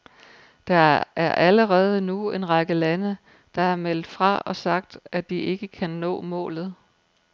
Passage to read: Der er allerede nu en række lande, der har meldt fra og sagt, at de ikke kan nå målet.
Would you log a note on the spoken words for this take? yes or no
no